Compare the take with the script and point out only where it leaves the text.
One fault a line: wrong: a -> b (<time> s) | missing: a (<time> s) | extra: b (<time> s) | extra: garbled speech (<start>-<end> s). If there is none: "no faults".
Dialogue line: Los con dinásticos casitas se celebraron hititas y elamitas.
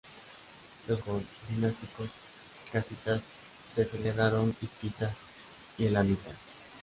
no faults